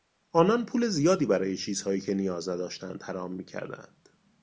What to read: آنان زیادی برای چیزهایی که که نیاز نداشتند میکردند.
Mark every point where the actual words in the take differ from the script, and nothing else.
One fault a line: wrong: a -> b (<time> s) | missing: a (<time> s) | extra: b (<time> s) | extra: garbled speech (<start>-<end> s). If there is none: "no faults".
extra: پول (0.7 s)
missing: که (2.1 s)
extra: حرام (3.0 s)